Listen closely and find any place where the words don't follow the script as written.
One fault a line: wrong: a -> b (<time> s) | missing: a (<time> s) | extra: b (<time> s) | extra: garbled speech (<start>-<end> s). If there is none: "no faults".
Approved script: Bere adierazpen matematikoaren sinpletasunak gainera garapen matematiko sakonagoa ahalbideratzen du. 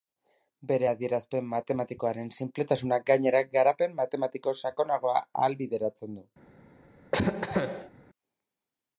no faults